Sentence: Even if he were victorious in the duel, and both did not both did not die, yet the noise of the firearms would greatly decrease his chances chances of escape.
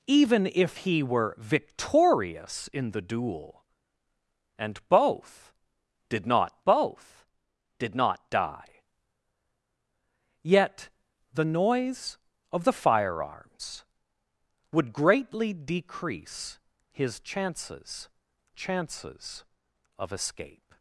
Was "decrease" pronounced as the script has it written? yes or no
yes